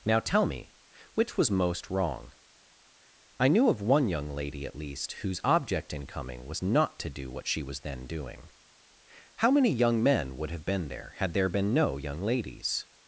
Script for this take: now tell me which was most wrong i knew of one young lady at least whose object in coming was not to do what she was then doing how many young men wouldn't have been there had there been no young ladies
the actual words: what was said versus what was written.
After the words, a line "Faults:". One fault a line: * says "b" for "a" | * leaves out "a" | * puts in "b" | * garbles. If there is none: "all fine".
now tell me which was most wrong i knew of one young lady at least whose object in coming was not to do what she was then doing how many young men would have been there had there been no young ladies
Faults:
* says "would" for "wouldn't"